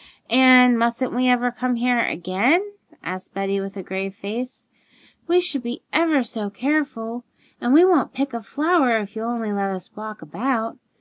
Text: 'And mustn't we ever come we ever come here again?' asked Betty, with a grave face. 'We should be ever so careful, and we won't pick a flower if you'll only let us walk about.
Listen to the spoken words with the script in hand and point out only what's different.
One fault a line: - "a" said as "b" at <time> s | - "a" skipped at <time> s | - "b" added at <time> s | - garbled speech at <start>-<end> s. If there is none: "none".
- "we ever come" skipped at 1.8 s